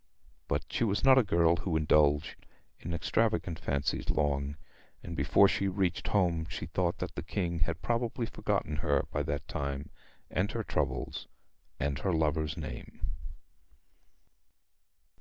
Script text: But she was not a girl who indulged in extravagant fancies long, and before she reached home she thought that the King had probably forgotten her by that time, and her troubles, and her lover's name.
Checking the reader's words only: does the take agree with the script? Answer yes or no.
yes